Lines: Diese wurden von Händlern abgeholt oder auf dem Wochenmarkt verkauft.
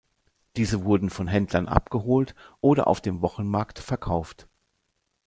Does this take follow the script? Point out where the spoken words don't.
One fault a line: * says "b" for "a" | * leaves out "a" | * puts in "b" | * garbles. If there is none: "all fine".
all fine